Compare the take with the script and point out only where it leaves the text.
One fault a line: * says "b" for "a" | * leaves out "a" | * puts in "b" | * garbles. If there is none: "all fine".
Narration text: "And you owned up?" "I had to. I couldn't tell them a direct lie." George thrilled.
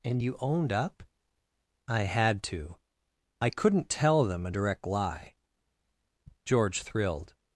all fine